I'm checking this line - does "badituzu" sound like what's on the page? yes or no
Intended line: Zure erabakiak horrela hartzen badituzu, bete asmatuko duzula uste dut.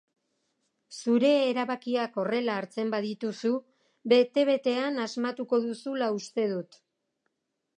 yes